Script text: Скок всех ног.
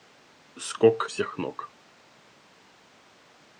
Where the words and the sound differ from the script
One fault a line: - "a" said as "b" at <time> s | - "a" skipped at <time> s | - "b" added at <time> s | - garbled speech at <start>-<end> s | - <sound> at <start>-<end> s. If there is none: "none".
none